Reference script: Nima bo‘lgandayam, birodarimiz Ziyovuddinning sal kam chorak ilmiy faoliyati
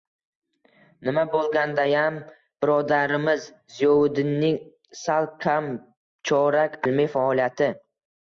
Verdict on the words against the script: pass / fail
pass